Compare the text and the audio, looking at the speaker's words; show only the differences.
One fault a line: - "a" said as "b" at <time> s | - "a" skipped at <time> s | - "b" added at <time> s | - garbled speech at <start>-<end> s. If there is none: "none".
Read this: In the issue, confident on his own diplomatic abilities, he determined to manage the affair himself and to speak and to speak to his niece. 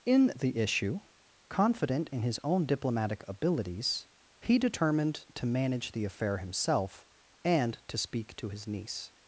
- "on" said as "in" at 2.1 s
- "and to speak" skipped at 8.3 s